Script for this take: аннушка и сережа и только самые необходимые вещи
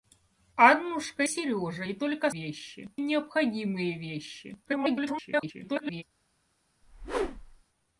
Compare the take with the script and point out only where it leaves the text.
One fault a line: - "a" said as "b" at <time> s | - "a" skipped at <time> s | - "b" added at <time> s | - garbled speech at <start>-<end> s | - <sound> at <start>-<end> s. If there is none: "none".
- "и" skipped at 1.2 s
- "самые" said as "вещи" at 2.3 s
- garbled speech at 4.6-6.0 s
- whoosh at 6.8-7.6 s